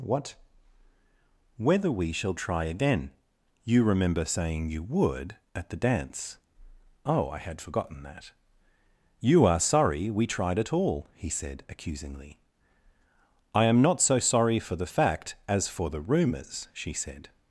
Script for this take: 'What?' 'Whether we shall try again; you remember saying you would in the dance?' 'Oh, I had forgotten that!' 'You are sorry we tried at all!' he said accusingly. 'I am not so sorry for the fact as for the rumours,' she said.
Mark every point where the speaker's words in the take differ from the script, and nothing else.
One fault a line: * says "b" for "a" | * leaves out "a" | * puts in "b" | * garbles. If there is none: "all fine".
* says "at" for "in"